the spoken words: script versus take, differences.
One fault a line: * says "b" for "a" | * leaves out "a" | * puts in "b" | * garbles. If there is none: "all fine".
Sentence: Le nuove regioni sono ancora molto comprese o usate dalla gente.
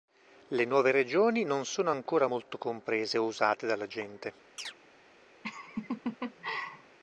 * puts in "non"